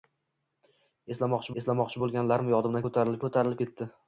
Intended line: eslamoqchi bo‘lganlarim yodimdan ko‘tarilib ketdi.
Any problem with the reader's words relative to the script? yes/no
yes